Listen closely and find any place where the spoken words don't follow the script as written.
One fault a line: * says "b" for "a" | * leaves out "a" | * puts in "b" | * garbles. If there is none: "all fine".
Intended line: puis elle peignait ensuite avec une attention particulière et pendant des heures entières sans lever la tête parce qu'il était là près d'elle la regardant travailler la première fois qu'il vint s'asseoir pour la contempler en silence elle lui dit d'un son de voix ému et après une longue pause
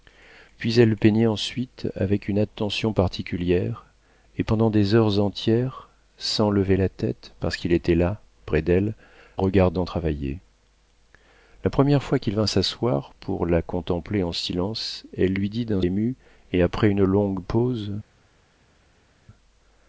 * leaves out "la"
* leaves out "son de voix"